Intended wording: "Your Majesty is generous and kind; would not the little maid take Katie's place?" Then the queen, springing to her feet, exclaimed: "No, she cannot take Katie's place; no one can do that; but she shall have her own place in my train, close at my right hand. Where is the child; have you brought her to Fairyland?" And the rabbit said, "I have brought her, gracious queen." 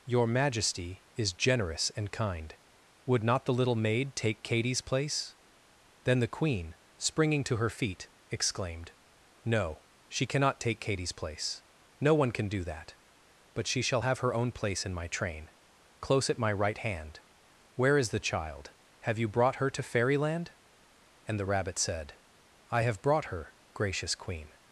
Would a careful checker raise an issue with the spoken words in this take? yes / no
no